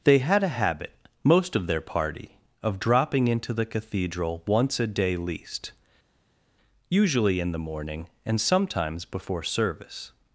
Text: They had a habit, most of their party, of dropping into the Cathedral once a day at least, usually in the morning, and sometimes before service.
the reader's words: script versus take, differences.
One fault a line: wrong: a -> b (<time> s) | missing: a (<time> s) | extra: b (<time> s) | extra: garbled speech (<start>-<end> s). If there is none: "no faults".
missing: at (5.2 s)